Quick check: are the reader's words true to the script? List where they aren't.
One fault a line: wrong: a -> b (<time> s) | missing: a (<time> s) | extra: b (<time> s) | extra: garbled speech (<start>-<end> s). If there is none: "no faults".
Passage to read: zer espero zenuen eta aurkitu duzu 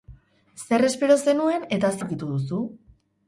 no faults